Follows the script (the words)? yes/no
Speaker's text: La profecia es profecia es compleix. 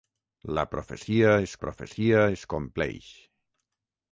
yes